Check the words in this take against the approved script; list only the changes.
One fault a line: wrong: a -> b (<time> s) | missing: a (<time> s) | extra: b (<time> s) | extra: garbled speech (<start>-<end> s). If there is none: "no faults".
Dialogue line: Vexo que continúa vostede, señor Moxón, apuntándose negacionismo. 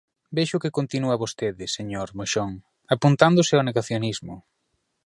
extra: ao (3.5 s)